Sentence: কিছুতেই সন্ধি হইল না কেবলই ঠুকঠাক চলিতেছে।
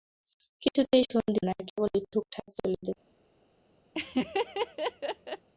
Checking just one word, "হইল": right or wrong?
wrong